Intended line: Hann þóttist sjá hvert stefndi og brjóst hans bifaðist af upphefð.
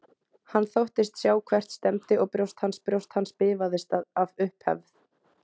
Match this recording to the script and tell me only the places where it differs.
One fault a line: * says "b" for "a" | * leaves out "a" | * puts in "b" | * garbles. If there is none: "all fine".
* puts in "brjóst hans"